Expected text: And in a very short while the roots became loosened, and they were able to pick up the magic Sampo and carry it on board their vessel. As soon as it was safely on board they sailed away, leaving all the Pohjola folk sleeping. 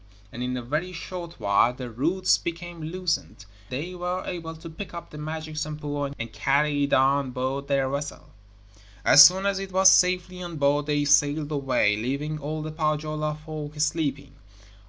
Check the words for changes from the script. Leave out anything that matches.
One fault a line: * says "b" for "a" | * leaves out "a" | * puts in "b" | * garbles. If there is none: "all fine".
* leaves out "and"